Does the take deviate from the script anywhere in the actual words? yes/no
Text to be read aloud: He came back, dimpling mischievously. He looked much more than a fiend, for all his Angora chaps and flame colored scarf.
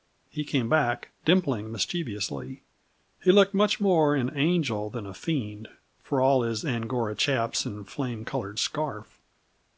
yes